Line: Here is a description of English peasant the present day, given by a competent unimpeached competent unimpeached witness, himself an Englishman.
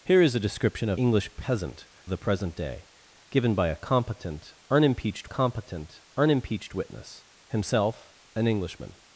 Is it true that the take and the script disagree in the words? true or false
false